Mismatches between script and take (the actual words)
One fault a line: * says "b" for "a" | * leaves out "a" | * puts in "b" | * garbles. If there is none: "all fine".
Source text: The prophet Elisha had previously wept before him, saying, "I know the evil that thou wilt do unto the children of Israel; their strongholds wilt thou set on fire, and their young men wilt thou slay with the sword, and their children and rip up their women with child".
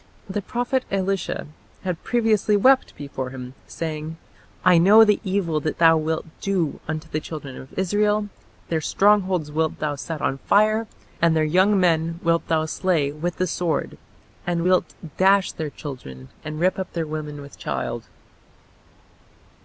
* puts in "wilt dash"